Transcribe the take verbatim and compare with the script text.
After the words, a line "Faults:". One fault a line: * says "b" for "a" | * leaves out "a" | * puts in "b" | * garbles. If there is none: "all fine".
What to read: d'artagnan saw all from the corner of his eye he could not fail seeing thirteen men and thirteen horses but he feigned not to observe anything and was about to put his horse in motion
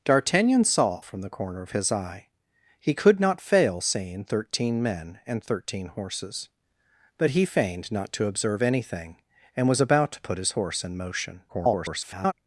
d'artagnan saw from the corner of his eye he could not fail seeing thirteen men and thirteen horses but he feigned not to observe anything and was about to put his horse in motion [garbled]
Faults:
* leaves out "all"
* garbles